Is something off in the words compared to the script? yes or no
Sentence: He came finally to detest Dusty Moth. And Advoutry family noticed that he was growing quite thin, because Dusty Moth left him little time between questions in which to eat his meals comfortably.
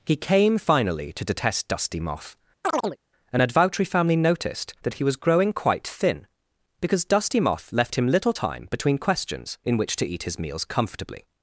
no